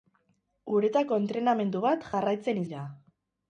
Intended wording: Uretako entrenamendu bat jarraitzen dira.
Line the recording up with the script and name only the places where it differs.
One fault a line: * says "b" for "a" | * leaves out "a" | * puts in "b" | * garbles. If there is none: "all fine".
all fine